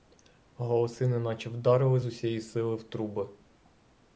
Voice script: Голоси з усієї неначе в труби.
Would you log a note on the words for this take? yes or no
yes